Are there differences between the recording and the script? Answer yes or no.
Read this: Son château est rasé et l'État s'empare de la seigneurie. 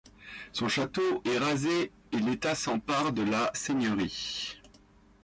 no